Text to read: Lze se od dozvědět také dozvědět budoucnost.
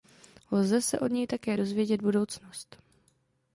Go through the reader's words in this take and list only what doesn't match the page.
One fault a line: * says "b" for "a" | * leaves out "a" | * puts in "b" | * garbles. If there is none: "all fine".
* says "něj" for "dozvědět"